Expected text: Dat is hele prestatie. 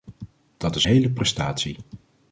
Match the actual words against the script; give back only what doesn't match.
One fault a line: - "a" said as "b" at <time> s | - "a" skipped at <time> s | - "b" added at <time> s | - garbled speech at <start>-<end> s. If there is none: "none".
none